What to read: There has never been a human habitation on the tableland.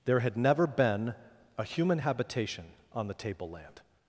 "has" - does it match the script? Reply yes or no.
no